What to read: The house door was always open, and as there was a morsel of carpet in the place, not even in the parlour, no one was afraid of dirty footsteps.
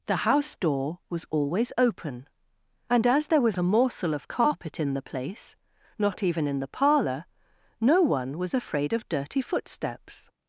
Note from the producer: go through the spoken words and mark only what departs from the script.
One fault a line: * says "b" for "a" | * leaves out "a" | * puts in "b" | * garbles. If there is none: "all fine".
all fine